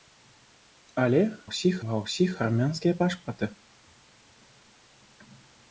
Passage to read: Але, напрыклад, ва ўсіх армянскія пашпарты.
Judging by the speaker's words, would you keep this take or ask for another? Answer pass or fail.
fail